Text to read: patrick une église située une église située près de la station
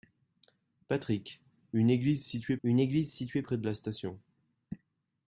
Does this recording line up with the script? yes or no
yes